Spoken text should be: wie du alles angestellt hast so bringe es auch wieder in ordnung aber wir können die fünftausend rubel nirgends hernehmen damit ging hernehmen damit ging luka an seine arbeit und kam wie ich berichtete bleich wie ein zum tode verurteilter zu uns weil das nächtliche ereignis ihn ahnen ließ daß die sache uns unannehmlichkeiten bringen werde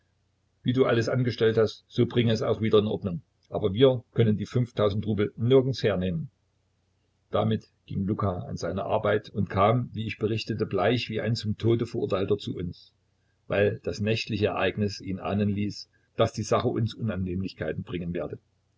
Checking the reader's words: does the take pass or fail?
fail